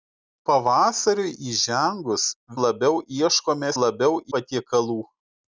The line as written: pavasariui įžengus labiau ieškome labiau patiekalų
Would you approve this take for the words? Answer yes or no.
yes